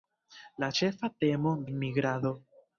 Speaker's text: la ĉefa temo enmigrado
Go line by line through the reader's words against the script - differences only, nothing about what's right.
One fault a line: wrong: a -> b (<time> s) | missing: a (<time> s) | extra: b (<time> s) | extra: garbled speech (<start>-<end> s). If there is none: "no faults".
no faults